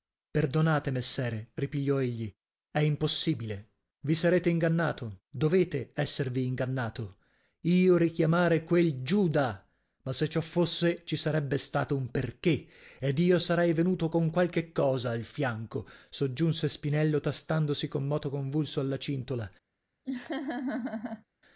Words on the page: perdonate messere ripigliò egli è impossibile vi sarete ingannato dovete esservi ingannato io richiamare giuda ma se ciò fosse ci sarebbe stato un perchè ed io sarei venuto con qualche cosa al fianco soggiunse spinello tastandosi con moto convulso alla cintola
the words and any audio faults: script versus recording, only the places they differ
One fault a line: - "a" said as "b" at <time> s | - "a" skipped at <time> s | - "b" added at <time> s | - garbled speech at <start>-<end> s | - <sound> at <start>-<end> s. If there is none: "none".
- "quel" added at 8.6 s
- laugh at 20.0-21.2 s